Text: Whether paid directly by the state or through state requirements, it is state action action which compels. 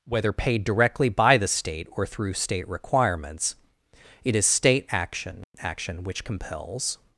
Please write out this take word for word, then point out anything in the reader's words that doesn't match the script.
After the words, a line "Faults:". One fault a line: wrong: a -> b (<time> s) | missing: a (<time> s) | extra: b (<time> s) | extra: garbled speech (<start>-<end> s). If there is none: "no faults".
Whether paid directly by the state or through state requirements, it is state action action which compels.
Faults:
no faults